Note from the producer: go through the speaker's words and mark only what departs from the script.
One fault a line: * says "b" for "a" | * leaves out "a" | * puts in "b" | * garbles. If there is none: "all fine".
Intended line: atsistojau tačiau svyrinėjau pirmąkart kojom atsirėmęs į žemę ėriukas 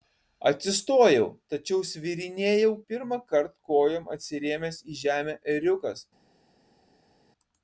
all fine